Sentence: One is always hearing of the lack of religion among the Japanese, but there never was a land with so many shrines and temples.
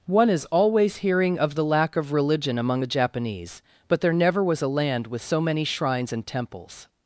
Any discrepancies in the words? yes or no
no